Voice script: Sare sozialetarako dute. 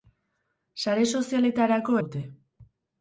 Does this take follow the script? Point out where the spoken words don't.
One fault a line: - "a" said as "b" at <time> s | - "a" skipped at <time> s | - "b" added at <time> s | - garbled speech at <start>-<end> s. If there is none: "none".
none